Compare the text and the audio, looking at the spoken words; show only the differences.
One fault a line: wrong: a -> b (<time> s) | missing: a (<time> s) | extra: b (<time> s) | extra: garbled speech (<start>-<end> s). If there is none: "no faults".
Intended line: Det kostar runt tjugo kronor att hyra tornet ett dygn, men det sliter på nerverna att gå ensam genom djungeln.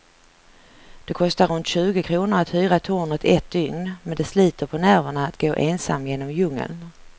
no faults